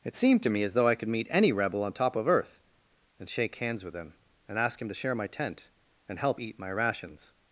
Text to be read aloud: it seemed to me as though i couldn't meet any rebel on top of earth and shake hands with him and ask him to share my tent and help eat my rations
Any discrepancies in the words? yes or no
yes